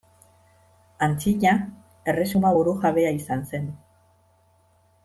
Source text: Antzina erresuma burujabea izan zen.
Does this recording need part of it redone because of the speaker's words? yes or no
no